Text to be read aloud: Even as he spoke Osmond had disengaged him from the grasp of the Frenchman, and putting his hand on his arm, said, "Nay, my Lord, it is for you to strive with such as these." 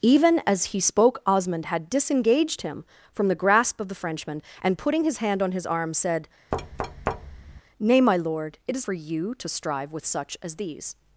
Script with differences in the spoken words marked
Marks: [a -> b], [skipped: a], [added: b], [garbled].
Even as he spoke Osmond had disengaged him from the grasp of the Frenchman, and putting his hand on his arm, said, "Nay, my Lord, it is for you to strive with such as these."